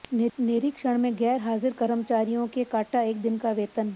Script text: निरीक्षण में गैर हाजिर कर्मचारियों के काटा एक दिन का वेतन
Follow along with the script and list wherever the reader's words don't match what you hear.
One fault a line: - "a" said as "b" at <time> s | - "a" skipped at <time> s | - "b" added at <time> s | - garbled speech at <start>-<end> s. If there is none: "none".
none